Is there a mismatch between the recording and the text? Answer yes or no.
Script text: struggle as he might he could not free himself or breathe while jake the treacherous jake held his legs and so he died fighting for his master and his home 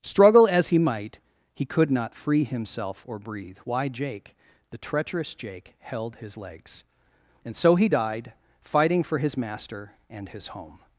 yes